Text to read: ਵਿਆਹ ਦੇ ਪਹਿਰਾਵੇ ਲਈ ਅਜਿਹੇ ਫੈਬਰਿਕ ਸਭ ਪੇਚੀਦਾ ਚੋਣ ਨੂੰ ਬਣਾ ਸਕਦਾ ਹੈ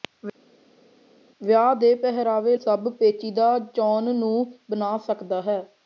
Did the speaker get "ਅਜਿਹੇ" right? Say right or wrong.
wrong